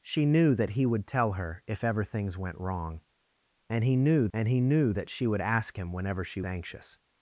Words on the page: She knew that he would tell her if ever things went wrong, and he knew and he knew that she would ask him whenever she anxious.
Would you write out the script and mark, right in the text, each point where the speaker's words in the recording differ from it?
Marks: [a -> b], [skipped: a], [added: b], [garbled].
She knew that he would tell her if ever things went wrong, and he knew and he knew that she would ask him whenever she anxious.